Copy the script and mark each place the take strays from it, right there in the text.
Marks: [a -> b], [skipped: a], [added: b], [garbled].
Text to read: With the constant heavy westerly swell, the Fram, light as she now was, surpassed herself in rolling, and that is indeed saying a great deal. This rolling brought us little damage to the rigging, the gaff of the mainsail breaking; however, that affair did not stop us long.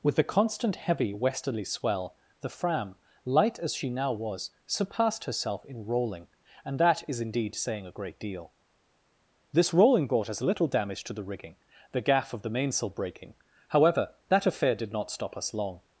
With the constant heavy westerly swell, the Fram, light as she now was, surpassed herself in rolling, and that is indeed saying a great deal. This rolling brought us little damage to the rigging, the gaff of the mainsail breaking; however, that affair did not stop us long.